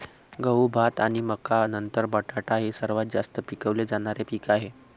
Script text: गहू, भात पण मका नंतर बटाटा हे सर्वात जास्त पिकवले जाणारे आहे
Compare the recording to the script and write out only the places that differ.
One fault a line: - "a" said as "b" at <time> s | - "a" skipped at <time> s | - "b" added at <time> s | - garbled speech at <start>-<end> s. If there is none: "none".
- "पण" said as "आणि" at 1.0 s
- "पीक" added at 4.3 s